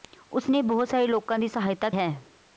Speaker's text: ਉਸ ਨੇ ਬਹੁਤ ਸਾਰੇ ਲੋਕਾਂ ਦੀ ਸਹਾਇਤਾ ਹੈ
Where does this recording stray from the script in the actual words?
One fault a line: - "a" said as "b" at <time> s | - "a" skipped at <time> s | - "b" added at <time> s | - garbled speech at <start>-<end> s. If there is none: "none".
none